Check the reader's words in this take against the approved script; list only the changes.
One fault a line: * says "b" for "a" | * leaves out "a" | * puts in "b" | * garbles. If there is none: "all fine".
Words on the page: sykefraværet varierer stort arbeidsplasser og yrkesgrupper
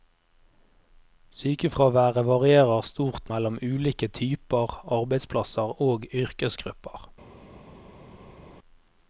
* puts in "mellom ulike typer"